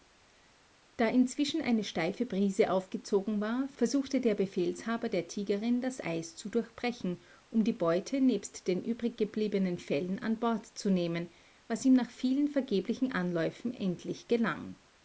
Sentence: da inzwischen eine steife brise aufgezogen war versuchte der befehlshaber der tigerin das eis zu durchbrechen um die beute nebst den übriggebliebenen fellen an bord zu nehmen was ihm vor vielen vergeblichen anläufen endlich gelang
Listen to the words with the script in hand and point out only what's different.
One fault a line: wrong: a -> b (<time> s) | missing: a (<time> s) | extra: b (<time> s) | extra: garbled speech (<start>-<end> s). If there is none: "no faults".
wrong: vor -> nach (12.0 s)